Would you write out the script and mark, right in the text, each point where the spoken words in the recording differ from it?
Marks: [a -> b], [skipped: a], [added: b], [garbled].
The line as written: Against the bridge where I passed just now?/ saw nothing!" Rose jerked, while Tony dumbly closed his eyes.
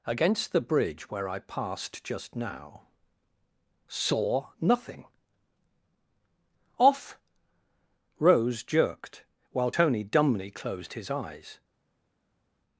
Against the bridge where I passed just now?/ saw nothing!" [added: off] Rose jerked, while Tony dumbly closed his eyes.